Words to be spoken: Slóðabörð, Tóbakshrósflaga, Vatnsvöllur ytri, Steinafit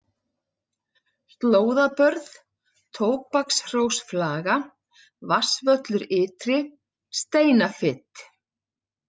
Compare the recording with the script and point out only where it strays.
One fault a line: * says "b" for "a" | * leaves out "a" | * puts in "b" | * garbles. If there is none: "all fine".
all fine